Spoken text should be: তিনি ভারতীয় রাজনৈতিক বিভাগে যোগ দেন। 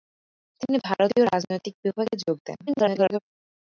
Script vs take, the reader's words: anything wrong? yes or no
yes